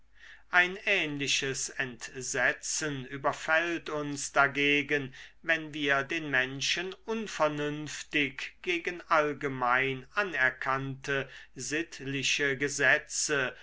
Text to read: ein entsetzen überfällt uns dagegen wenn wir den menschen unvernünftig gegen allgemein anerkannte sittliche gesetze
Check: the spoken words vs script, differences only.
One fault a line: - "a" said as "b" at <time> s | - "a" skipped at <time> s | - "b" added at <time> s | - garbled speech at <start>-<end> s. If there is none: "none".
- "ähnliches" added at 0.9 s